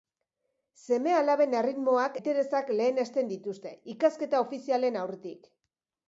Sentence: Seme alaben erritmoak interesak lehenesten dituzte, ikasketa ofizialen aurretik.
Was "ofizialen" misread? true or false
false